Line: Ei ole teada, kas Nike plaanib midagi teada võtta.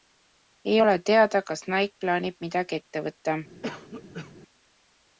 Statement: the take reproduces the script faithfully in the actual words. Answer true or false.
false